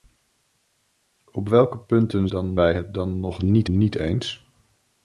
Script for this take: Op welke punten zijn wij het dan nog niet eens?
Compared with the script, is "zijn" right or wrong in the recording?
wrong